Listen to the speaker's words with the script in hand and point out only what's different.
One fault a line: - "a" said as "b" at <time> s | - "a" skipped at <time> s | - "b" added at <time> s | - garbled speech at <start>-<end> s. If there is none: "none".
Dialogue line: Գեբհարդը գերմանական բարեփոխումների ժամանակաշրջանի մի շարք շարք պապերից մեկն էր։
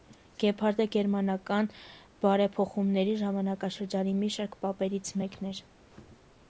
- "շարք" skipped at 4.6 s